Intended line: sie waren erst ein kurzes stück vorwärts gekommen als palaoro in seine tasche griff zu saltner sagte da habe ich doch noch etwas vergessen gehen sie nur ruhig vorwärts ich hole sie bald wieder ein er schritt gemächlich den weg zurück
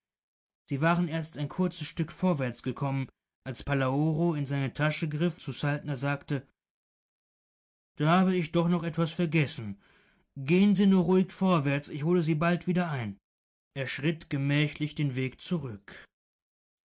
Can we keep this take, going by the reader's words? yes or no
yes